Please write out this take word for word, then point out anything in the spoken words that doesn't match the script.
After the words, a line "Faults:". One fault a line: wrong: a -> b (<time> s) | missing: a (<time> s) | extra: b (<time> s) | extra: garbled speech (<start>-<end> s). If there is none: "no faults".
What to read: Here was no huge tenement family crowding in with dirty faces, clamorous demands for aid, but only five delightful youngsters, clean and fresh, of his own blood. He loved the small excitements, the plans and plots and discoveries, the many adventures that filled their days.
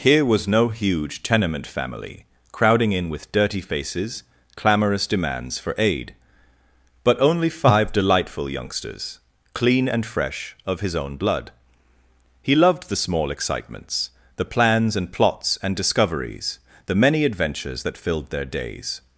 Here was no huge tenement family crowding in with dirty faces, clamorous demands for aid, but only five delightful youngsters, clean and fresh, of his own blood. He loved the small excitements, the plans and plots and discoveries, the many adventures that filled their days.
Faults:
no faults